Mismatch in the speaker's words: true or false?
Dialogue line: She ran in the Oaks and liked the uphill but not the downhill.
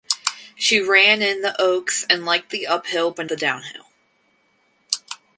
true